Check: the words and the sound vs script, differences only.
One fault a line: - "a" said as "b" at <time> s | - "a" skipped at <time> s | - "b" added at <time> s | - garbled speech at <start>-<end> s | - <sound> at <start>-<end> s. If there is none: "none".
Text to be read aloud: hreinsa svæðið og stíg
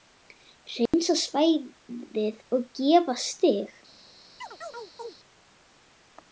- dropout at 0.9-0.9 s
- "gera" added at 2.8 s
- chirp at 4.4-5.2 s